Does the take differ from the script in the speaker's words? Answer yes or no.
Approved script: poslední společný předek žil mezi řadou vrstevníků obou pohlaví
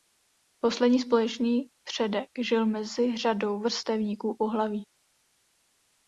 yes